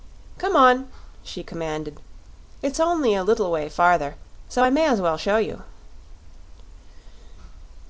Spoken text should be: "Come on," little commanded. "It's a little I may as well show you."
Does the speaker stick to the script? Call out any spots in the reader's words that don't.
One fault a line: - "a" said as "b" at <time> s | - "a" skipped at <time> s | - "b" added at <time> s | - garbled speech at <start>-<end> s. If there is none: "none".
- "little" said as "she" at 1.2 s
- "only" added at 2.8 s
- "way farther so" added at 3.5 s